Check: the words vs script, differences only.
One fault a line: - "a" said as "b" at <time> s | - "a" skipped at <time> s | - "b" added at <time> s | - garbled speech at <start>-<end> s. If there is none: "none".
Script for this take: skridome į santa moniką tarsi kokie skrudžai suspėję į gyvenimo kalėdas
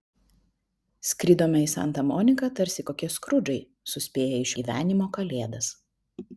none